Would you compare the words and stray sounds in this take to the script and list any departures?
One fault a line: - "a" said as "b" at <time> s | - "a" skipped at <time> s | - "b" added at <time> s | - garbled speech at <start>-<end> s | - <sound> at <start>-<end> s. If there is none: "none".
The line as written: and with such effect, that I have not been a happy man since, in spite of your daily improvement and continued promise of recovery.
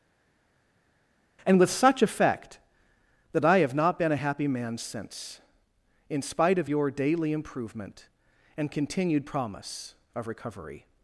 none